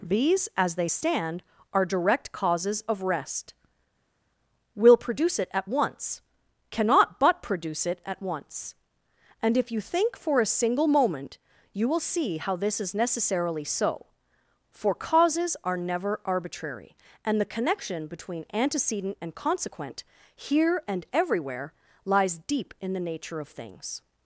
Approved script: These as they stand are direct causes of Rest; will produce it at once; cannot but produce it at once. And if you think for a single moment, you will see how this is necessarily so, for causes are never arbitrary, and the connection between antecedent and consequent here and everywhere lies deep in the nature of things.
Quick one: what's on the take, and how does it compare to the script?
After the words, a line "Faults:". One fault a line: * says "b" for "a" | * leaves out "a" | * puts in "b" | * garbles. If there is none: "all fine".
These as they stand are direct causes of Rest; will produce it at once; cannot but produce it at once. And if you think for a single moment, you will see how this is necessarily so, for causes are never arbitrary, and the connection between antecedent and consequent here and everywhere lies deep in the nature of things.
Faults:
all fine